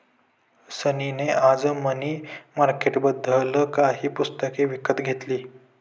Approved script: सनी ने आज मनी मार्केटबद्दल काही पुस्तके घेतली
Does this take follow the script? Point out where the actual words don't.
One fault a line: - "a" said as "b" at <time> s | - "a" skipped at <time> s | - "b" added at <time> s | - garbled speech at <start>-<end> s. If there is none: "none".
- "विकत" added at 4.7 s